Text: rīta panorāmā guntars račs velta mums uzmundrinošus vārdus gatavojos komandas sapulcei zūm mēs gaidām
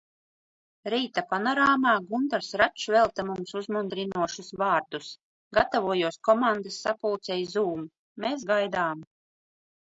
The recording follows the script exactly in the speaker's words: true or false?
true